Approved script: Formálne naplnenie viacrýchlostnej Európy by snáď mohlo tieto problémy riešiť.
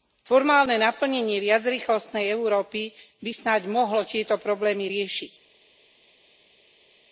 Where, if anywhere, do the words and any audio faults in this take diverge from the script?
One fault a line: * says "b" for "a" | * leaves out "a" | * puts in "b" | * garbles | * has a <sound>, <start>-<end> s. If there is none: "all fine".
all fine